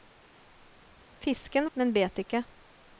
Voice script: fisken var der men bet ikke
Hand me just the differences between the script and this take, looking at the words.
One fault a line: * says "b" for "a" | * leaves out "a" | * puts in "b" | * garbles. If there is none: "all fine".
* leaves out "var der"